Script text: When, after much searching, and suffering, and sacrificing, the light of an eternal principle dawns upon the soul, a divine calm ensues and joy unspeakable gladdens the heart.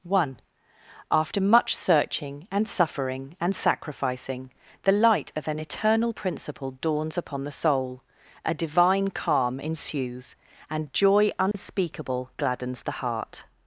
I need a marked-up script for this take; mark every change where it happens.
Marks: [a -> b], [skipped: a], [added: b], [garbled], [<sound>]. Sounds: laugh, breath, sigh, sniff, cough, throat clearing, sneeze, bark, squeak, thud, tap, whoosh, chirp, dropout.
[When, -> One] after much searching, and suffering, and sacrificing, the light of an eternal principle dawns upon the soul, a divine calm ensues and joy unspeakable [dropout] gladdens the heart.